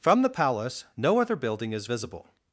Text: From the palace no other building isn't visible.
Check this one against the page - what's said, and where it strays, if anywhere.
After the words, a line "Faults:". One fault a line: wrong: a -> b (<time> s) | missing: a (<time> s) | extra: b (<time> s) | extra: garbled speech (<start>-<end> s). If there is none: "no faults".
From the palace no other building is visible.
Faults:
wrong: isn't -> is (1.7 s)